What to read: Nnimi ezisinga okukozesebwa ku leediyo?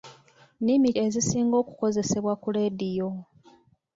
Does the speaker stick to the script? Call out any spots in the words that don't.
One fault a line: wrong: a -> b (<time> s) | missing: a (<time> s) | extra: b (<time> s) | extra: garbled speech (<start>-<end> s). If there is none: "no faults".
no faults